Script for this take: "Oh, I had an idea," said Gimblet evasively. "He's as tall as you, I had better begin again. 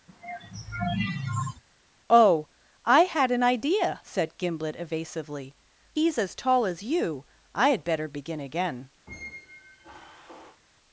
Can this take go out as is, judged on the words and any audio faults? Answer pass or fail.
fail